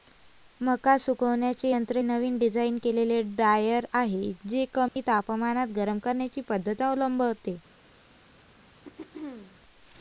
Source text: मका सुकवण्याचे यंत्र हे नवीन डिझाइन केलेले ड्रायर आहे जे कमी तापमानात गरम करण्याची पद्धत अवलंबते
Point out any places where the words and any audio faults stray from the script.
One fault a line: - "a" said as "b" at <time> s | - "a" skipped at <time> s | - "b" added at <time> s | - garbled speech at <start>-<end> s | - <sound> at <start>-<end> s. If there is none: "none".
- "हे" skipped at 2.0 s
- dropout at 4.9-5.0 s
- throat clearing at 8.8-9.6 s